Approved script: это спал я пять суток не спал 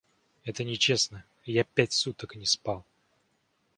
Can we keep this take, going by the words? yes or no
no